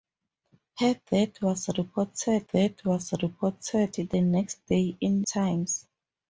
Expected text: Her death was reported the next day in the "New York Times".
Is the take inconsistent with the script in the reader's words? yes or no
yes